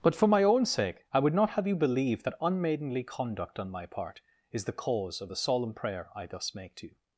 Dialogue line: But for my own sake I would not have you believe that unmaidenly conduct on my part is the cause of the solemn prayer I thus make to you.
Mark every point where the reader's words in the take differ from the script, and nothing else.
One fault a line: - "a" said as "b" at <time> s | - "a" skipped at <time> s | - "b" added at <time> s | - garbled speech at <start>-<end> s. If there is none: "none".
none